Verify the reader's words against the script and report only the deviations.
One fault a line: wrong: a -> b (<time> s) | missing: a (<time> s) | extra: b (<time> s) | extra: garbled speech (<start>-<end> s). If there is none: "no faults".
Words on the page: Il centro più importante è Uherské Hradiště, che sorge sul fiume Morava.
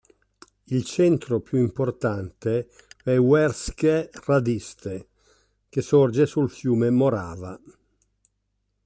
no faults